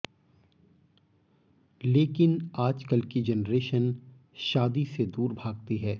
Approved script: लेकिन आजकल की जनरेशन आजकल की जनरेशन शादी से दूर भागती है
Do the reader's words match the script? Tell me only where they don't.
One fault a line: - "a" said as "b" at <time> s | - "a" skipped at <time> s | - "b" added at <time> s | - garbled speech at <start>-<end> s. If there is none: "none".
- "आजकल की जनरेशन" skipped at 3.9 s